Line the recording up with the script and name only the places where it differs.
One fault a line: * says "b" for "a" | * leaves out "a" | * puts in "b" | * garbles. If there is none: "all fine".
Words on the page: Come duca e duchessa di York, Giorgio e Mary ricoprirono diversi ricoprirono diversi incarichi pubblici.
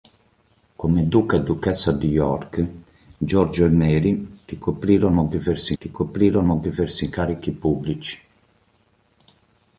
all fine